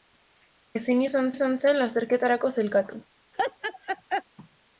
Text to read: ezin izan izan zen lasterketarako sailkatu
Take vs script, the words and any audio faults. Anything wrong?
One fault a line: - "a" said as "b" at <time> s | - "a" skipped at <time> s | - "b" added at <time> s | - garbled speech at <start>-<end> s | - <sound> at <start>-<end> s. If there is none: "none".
- laugh at 3.3-4.2 s